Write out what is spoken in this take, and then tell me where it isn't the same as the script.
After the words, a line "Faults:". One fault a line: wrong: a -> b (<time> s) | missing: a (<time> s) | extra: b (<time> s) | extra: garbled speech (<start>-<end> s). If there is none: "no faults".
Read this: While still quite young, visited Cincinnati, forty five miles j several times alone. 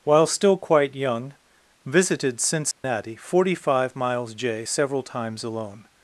While still quite young, visited Cincinnati, forty five miles j several times alone.
Faults:
no faults